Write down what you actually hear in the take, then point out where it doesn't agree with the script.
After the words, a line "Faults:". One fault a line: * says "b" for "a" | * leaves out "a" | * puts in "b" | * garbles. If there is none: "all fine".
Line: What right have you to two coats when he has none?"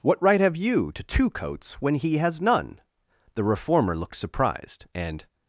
What right have you to two coats when he has none?" The reformer looked surprised, and
Faults:
* puts in "The reformer looked surprised and"